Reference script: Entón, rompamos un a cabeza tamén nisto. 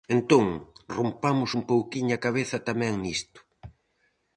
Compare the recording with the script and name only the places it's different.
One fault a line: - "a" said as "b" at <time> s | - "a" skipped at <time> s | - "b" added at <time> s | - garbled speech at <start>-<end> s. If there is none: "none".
- "pouquiño" added at 1.7 s